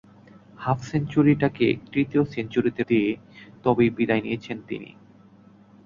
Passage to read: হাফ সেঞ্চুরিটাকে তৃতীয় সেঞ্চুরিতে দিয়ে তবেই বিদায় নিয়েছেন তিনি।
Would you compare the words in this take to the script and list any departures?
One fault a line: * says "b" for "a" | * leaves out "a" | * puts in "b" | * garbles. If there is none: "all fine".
all fine